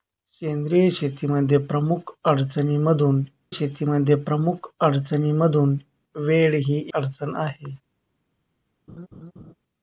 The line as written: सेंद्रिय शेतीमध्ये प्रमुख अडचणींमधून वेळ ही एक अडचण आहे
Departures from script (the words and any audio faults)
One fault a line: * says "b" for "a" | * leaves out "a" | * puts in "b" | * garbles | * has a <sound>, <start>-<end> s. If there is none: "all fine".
* puts in "शेतीमध्ये प्रमुख अडचणींमधून"
* leaves out "एक"
* has a laugh, 8.9-9.5 s